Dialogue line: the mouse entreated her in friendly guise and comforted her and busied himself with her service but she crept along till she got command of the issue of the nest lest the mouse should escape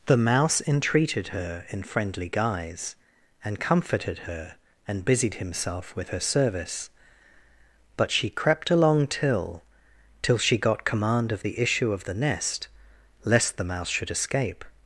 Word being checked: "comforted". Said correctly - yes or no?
yes